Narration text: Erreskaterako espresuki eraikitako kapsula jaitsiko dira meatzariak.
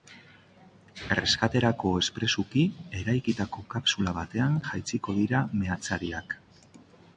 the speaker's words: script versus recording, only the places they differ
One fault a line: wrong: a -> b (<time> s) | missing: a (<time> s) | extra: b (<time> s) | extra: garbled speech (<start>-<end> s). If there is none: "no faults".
extra: batean (4.2 s)